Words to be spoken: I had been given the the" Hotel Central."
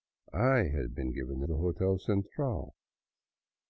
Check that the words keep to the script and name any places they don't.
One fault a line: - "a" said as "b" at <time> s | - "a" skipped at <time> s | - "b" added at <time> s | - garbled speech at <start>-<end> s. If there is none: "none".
none